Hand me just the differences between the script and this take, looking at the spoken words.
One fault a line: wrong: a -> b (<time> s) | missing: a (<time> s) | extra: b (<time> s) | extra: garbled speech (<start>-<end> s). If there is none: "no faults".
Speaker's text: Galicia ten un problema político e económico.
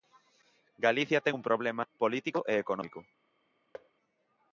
no faults